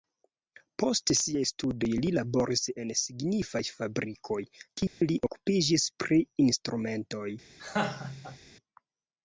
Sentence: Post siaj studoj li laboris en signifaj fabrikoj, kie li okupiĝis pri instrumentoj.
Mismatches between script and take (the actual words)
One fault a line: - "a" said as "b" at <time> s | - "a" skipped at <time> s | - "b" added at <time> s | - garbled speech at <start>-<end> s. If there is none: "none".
none